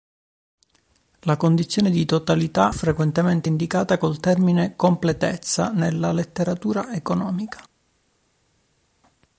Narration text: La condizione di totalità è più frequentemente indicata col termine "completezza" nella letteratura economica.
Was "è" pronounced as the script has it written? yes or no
no